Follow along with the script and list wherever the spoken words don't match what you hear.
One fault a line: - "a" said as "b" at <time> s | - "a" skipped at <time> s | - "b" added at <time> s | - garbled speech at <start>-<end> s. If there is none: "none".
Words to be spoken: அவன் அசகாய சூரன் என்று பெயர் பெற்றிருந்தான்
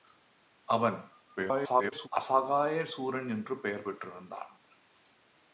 - garbled speech at 1.4-2.1 s